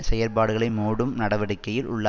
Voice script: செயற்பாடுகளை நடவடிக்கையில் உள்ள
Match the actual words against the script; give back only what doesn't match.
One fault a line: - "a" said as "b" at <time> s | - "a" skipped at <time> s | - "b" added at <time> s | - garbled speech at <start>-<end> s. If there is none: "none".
- "மூடும்" added at 0.7 s